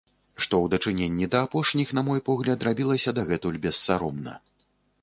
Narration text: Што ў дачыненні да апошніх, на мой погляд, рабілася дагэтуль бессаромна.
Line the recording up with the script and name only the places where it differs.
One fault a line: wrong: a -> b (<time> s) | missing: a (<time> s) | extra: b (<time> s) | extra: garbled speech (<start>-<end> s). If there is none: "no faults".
no faults